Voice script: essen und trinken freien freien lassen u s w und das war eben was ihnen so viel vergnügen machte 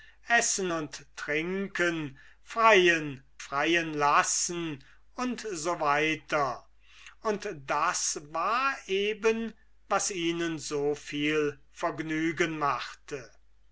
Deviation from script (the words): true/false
false